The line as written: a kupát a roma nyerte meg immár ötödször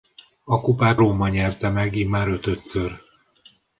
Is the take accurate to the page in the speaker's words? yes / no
no